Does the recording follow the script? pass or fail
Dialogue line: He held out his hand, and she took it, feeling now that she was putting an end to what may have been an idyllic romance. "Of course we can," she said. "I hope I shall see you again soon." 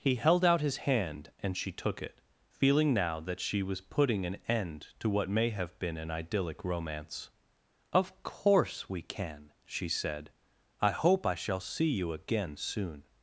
pass